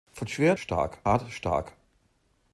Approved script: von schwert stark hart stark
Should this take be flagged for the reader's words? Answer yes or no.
no